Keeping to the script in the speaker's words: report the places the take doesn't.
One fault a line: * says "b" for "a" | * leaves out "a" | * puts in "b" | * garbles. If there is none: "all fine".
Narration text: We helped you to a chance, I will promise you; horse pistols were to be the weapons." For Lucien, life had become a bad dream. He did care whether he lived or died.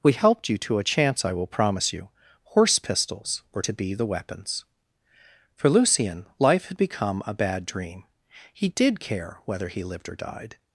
all fine